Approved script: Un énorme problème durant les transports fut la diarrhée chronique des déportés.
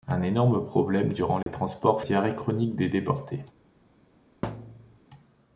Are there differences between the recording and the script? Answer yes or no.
yes